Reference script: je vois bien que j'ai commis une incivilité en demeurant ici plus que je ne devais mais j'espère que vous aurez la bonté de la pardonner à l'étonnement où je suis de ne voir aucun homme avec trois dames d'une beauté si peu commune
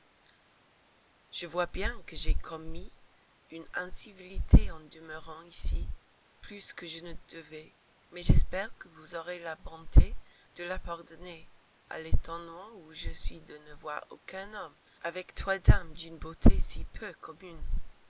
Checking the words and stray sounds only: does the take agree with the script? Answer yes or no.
yes